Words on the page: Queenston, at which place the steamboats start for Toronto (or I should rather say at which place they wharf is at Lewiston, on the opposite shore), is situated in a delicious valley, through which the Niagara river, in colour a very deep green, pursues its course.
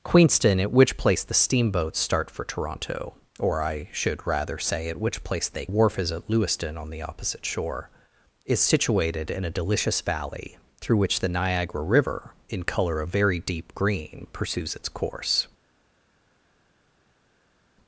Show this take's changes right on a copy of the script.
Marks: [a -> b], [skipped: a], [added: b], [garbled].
Queenston, at which place the steamboats start for Toronto (or I should rather say at which place they wharf is at Lewiston, on the opposite shore), is situated in a delicious valley, through which the Niagara river, in colour a very deep green, pursues its course.